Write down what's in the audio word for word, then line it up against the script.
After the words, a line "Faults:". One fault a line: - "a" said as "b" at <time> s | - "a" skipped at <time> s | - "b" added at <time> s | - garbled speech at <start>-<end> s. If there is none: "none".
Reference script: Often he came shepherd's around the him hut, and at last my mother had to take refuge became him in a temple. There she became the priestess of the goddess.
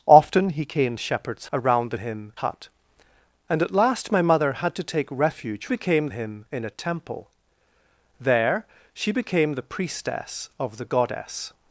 Often he came shepherd's around the him hut, and at last my mother had to take refuge became him in a temple. There she became the priestess of the goddess.
Faults:
none